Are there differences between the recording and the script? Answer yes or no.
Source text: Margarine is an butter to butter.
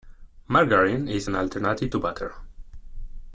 yes